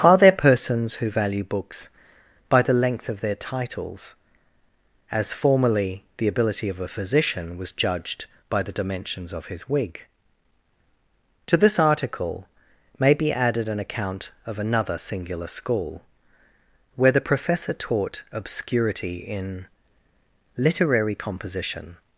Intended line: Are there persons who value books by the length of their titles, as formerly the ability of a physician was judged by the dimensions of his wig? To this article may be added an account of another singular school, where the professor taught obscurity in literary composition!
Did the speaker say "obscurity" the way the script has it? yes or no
yes